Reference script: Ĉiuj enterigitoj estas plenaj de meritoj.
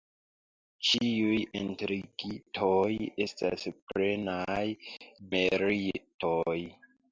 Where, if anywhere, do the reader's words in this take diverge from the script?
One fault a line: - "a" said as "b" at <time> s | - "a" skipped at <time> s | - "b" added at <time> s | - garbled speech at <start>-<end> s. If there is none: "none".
- "de" skipped at 4.6 s